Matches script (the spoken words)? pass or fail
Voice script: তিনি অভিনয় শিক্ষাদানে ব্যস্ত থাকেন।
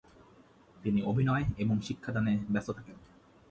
fail